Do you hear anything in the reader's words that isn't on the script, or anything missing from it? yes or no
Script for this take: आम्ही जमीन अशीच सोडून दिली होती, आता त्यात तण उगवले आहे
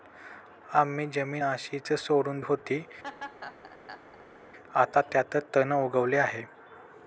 yes